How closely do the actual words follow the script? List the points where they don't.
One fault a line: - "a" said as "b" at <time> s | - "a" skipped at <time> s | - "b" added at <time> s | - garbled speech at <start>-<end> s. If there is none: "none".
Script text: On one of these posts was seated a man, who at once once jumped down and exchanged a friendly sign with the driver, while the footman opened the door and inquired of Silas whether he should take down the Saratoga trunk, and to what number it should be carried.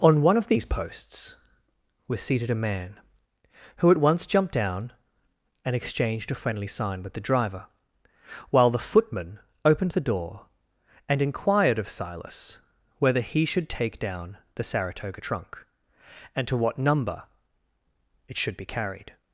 - "once" skipped at 4.2 s